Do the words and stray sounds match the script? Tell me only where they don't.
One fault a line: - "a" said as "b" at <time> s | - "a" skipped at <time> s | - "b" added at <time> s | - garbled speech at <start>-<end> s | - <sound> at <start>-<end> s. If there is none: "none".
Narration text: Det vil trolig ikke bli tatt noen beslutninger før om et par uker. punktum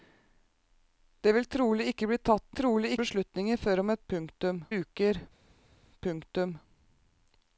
- "noen" said as "trolig" at 2.6 s
- "par" said as "punktum" at 4.1 s